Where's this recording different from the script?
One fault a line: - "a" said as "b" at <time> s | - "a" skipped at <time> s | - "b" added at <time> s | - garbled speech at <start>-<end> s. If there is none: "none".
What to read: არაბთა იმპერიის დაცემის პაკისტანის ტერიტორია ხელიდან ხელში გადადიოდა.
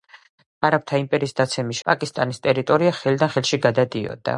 none